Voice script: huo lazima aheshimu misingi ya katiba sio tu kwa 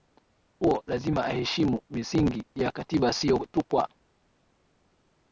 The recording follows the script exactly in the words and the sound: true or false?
true